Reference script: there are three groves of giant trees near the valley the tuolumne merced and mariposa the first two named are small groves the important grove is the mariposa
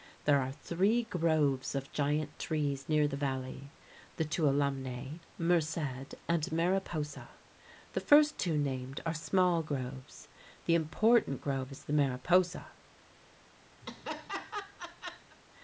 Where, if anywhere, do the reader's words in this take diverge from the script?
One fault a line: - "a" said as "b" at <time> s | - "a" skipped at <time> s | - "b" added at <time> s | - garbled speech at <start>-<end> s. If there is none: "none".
none